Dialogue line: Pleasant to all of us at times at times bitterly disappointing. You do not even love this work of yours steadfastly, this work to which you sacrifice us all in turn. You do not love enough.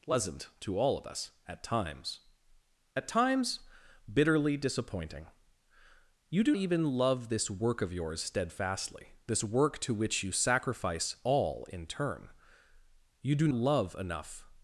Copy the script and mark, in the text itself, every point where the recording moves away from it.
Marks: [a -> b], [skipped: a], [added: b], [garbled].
Pleasant to all of us at times at times bitterly disappointing. You do [skipped: not] even love this work of yours steadfastly, this work to which you sacrifice [skipped: us] all in turn. You do [skipped: not] love enough.